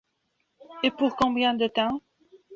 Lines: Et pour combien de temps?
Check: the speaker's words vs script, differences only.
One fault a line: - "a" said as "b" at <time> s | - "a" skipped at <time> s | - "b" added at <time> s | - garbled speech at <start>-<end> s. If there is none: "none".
none